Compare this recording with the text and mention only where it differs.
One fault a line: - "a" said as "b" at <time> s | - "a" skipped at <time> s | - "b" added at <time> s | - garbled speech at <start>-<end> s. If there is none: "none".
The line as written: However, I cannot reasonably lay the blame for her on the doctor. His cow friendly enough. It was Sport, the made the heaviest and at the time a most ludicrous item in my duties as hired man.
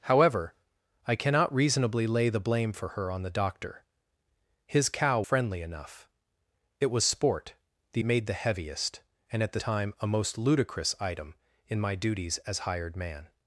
none